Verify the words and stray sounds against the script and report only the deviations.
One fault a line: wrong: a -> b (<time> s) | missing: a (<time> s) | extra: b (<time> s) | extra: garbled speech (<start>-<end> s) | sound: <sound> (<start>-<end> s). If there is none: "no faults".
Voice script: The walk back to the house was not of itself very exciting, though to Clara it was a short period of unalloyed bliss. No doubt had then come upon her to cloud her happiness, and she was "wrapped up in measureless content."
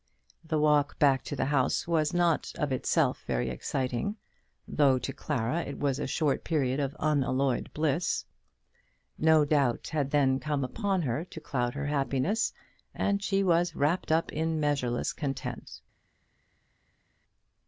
no faults